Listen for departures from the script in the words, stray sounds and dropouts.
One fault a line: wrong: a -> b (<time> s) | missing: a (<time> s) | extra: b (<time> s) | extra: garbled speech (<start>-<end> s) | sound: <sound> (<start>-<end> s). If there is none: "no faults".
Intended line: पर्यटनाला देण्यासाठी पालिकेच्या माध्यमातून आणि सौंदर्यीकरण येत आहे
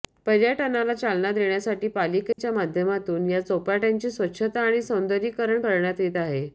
extra: चालना (0.9 s)
sound: dropout (2.3-2.4 s)
extra: या चौपाट्यांची स्वच्छता (3.3 s)
extra: करण्यात (5.6 s)